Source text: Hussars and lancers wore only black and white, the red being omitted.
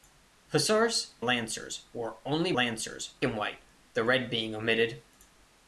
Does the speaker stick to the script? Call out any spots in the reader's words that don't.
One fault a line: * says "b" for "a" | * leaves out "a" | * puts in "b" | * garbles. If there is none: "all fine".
* leaves out "and"
* says "lancers" for "black"